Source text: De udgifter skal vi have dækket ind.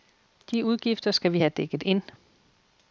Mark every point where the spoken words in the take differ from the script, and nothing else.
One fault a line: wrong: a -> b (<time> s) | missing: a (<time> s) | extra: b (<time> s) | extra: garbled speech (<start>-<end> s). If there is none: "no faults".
no faults